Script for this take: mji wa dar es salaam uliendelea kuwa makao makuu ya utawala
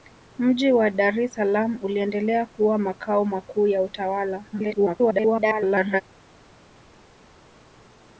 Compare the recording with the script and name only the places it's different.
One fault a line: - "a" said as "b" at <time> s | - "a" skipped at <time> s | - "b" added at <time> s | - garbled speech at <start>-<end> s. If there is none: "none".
- garbled speech at 4.5-6.0 s